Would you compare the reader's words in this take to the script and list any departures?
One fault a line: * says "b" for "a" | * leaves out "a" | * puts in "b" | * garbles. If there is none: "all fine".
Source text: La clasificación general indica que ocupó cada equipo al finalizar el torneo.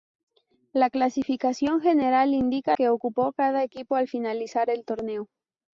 all fine